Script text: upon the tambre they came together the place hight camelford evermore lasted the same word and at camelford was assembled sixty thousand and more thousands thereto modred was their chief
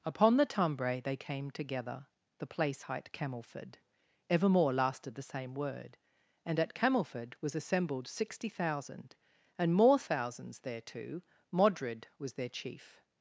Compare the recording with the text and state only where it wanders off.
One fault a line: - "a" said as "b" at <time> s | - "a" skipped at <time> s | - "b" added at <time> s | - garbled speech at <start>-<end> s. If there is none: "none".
none